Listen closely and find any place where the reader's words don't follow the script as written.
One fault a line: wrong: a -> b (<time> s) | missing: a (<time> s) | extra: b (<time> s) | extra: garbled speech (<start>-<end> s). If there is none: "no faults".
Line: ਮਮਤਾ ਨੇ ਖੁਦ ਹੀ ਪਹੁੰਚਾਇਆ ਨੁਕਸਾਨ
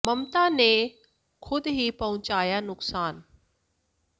no faults